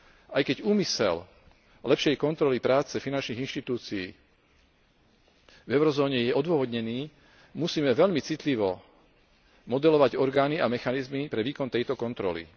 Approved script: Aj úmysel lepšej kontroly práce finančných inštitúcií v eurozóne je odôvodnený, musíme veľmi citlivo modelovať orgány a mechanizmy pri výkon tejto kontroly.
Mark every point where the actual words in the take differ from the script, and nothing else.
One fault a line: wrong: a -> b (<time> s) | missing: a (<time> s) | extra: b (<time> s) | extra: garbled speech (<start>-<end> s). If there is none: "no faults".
extra: keď (0.4 s)
wrong: pri -> pre (11.2 s)